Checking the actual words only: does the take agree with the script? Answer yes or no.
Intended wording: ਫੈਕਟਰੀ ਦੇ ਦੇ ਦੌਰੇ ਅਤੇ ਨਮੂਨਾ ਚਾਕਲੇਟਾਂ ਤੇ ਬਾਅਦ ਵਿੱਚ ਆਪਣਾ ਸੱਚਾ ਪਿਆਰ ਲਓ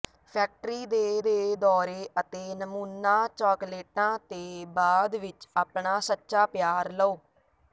yes